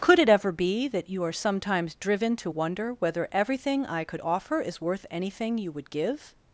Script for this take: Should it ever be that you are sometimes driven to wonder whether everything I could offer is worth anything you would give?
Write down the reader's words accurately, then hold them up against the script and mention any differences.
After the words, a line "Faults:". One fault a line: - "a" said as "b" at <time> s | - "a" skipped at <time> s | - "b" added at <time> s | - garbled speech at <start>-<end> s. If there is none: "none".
Could it ever be that you are sometimes driven to wonder whether everything I could offer is worth anything you would give?
Faults:
- "Should" said as "Could" at 0.0 s